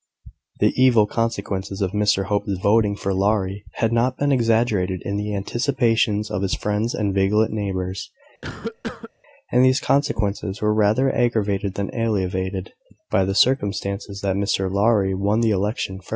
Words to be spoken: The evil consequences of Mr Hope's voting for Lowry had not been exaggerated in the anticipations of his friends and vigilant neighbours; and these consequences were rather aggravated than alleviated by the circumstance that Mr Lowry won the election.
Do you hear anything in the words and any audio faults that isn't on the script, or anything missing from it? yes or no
yes